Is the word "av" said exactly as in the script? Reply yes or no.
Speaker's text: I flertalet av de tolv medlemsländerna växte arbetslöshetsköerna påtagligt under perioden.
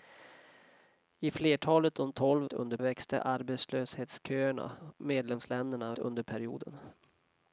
no